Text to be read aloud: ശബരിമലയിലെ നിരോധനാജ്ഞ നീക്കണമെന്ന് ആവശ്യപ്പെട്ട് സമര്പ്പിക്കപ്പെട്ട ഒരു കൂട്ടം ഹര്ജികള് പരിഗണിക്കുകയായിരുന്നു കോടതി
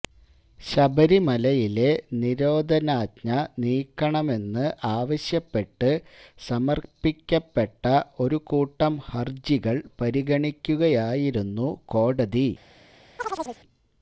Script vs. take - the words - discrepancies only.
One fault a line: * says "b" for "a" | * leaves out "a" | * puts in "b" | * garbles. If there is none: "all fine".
all fine